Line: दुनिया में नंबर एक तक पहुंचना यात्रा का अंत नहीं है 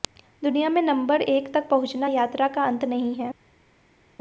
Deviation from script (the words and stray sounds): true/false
false